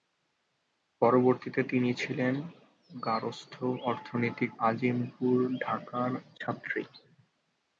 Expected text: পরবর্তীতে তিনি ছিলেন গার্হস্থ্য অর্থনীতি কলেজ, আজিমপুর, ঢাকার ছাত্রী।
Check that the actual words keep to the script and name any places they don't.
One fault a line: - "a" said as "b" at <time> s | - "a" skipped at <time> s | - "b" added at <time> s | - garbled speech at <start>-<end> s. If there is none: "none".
- "কলেজ" skipped at 4.5 s